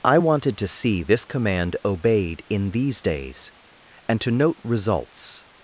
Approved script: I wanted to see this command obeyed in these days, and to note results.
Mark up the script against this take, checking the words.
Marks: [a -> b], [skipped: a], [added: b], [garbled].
I wanted to see this command obeyed in these days, and to note results.